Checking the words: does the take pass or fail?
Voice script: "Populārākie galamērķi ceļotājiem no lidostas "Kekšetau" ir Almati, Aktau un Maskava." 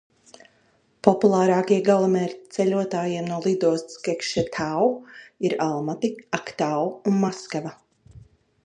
pass